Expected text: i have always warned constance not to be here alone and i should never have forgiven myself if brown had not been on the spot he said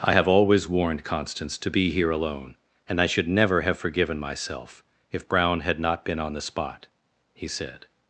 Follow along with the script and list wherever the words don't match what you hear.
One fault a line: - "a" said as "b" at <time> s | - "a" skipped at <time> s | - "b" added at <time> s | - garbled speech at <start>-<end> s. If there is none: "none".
- "not" skipped at 1.6 s